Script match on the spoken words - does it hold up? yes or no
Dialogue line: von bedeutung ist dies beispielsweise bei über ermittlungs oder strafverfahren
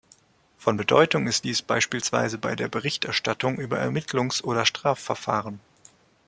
no